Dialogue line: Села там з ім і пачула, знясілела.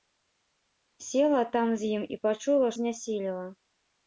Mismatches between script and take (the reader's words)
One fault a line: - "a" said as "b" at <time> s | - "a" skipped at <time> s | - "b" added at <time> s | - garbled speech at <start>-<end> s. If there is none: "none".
none